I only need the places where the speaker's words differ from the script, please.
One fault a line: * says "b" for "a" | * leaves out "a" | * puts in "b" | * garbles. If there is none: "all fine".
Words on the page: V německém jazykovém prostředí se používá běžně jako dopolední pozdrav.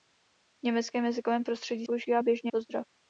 * leaves out "se"
* leaves out "jako dopolední"